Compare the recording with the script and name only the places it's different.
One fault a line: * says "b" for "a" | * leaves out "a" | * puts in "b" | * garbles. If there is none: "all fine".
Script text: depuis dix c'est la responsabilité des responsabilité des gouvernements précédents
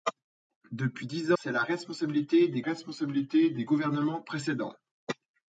all fine